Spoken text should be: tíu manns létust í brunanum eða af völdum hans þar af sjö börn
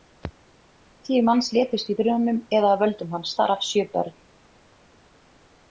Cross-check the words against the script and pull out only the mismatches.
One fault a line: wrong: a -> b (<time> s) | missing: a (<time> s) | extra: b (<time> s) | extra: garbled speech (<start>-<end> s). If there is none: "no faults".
no faults